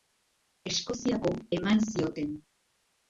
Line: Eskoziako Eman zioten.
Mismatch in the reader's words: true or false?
false